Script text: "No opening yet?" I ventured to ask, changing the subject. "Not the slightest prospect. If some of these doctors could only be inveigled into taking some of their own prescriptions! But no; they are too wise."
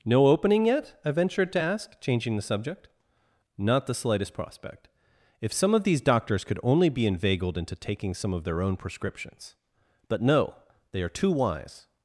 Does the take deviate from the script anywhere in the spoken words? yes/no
no